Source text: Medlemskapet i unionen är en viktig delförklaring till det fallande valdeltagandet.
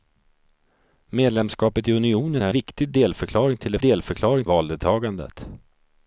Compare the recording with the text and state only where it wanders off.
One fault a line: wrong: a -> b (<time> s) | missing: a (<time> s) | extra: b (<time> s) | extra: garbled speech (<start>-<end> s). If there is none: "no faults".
missing: en (2.5 s)
wrong: fallande -> delförklaring (3.8 s)